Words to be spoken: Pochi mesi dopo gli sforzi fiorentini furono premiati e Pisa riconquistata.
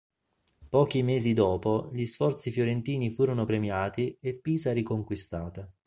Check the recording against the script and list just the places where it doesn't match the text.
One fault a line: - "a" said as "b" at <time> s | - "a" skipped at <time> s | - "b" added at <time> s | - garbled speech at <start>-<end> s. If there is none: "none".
none